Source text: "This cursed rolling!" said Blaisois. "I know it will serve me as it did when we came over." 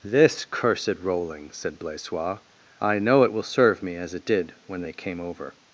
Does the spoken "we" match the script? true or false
false